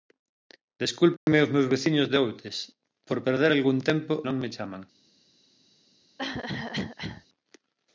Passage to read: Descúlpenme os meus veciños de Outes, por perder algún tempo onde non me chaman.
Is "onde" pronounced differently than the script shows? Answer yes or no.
yes